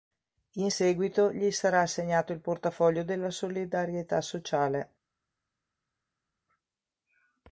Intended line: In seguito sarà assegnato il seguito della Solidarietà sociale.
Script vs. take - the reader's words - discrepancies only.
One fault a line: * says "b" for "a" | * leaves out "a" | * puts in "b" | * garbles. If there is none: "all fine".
* puts in "gli"
* says "portafoglio" for "seguito"